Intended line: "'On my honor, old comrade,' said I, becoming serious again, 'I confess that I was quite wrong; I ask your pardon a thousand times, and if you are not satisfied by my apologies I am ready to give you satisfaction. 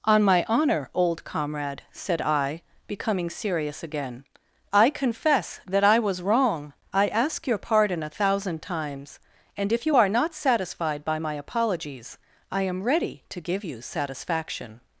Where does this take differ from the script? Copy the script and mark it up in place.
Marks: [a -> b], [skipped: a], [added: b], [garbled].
"'On my honor, old comrade,' said I, becoming serious again, 'I confess that I was [skipped: quite] wrong; I ask your pardon a thousand times, and if you are not satisfied by my apologies I am ready to give you satisfaction.